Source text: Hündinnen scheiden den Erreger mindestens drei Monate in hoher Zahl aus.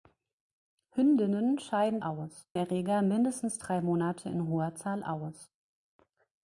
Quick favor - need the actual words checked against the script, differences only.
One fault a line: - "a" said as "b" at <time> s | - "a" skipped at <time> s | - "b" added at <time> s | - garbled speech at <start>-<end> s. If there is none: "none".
- "den" said as "aus" at 2.0 s